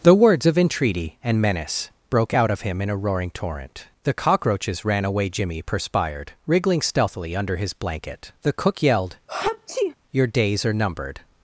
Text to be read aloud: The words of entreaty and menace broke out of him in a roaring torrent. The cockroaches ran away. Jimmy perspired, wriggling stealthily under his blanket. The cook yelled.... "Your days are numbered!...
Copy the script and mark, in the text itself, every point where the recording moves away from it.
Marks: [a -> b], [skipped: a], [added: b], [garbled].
The words of entreaty and menace broke out of him in a roaring torrent. The cockroaches ran away. Jimmy perspired, wriggling stealthily under his blanket. The cook yelled.... "Your days are numbered!...